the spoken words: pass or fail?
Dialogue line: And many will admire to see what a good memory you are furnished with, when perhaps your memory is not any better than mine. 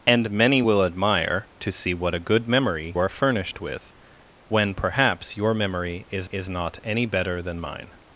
fail